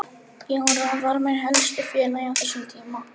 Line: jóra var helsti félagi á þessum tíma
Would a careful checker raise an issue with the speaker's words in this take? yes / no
yes